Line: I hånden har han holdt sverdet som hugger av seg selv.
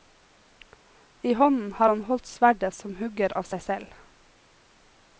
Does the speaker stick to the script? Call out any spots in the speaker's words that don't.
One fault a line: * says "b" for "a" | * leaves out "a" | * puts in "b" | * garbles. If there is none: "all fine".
all fine